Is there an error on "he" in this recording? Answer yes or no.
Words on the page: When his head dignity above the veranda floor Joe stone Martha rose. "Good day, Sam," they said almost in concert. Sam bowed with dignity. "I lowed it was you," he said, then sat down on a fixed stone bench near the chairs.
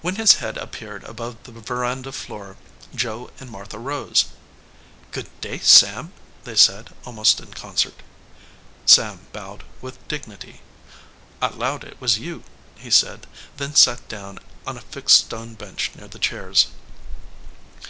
no